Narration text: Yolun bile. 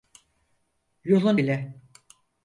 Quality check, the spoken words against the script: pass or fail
pass